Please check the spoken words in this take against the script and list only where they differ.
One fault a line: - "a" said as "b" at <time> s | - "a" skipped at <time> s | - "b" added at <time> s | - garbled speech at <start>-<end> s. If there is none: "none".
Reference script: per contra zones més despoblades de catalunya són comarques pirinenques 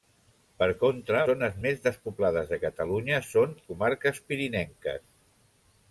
none